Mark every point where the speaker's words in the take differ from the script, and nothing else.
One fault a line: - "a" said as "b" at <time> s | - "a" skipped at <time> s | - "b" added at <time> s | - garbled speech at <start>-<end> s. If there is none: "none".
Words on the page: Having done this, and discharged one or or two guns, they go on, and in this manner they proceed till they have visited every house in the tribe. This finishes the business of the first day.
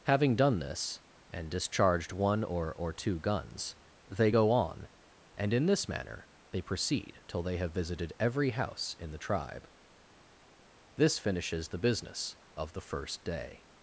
none